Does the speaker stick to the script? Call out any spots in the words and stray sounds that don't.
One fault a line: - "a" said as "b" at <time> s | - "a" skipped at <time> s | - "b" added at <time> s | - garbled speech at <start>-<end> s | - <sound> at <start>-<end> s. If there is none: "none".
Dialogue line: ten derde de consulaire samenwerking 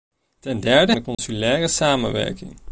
- dropout at 1.1-1.2 s